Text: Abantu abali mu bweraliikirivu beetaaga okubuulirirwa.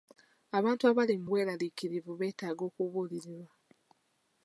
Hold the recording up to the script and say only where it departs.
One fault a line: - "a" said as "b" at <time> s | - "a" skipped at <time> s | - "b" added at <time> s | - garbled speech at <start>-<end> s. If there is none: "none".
none